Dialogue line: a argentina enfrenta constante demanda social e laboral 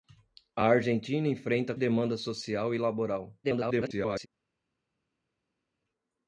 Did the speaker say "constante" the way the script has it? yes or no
no